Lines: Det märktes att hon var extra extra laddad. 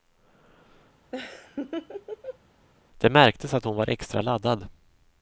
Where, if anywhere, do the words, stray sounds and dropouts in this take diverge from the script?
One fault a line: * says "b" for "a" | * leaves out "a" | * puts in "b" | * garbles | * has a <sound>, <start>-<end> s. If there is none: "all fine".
* has a laugh, 1.1-2.4 s
* leaves out "extra"